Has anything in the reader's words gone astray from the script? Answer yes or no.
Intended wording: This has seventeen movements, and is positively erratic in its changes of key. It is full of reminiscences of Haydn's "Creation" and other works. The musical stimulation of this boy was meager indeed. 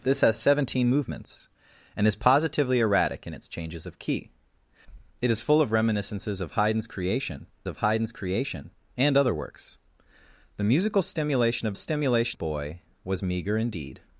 yes